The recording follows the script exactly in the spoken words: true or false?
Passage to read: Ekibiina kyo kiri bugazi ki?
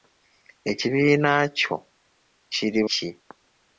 false